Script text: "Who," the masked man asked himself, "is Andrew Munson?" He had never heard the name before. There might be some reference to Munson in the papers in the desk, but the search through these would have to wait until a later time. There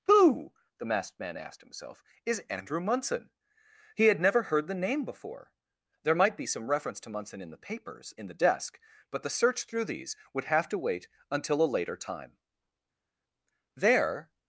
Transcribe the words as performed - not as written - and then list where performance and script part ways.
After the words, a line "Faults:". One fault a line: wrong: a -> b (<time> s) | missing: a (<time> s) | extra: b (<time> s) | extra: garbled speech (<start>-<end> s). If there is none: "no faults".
"Who," the masked man asked himself, "is Andrew Munson?" He had never heard the name before. There might be some reference to Munson in the papers in the desk, but the search through these would have to wait until a later time. There
Faults:
no faults